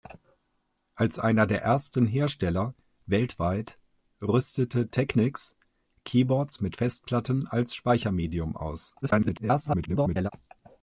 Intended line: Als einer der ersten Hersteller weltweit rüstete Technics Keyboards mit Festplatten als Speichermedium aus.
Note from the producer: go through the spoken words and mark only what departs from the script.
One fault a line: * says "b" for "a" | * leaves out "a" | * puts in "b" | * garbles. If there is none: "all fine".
* garbles